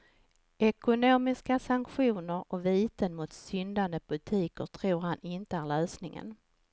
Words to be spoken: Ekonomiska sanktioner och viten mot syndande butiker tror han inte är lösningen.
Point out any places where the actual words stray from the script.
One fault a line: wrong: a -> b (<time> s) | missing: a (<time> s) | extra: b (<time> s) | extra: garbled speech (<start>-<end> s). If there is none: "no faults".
no faults